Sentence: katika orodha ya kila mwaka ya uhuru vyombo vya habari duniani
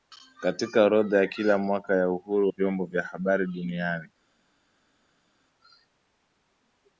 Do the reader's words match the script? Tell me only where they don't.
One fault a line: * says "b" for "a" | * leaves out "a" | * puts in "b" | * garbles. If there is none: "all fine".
all fine